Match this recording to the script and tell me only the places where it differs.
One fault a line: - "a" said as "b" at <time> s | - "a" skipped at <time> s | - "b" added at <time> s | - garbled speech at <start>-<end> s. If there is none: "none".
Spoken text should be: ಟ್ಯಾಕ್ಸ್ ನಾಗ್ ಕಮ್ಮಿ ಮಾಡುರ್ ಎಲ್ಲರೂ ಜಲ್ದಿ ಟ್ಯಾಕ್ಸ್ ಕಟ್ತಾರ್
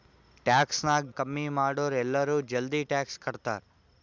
none